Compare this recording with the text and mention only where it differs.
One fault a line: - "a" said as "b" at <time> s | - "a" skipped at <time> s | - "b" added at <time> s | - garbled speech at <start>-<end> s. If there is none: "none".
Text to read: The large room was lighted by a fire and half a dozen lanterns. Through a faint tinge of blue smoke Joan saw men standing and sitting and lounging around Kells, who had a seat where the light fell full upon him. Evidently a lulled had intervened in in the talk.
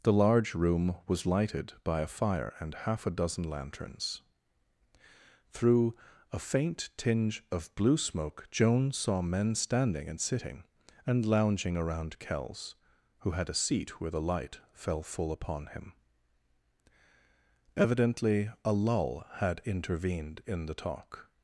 - "lulled" said as "lull" at 18.7 s
- "in" skipped at 20.7 s